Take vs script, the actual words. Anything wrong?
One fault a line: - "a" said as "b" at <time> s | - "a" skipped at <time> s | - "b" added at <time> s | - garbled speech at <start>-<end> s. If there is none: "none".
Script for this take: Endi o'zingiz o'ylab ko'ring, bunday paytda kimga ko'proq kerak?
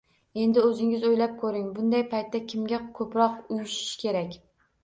- "uyushish" added at 3.6 s